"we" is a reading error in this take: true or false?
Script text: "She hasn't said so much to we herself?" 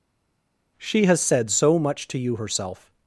true